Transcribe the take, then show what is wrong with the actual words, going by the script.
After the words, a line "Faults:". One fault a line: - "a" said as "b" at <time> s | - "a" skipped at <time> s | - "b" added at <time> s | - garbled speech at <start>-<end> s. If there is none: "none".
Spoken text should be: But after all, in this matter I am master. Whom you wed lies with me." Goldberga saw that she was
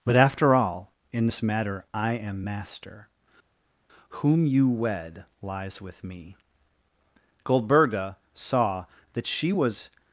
But after all, in this matter I am master. Whom you wed lies with me." Goldberga saw that she was
Faults:
none